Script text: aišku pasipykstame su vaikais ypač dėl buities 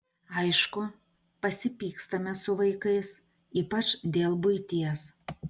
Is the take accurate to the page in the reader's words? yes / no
yes